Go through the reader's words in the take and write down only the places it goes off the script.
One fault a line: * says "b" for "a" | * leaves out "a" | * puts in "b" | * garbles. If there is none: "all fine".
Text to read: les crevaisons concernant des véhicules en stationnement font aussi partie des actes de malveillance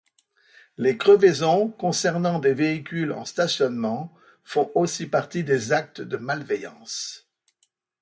all fine